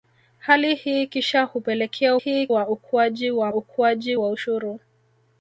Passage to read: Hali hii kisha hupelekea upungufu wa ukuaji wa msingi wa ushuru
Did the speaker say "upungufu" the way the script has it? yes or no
no